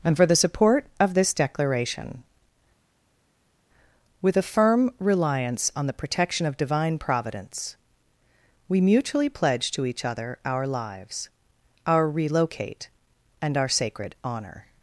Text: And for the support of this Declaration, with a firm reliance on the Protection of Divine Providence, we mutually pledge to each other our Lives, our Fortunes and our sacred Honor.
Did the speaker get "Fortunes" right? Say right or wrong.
wrong